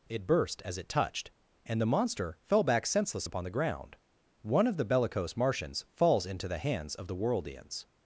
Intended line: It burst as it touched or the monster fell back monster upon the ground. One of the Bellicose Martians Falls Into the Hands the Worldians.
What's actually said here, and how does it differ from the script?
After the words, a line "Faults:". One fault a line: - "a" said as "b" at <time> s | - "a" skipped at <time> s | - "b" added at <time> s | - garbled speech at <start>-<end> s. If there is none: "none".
It burst as it touched and the monster fell back senseless upon the ground. One of the Bellicose Martians Falls Into the Hands of the Worldians.
Faults:
- "or" said as "and" at 1.7 s
- "monster" said as "senseless" at 2.9 s
- "of" added at 6.9 s